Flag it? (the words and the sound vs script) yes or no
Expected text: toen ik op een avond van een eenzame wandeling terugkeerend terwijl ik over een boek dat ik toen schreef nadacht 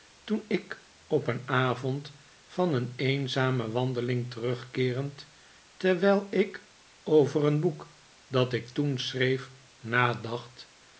no